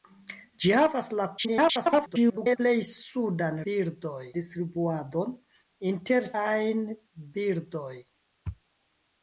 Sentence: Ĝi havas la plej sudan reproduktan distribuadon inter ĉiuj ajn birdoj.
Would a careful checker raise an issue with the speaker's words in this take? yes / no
yes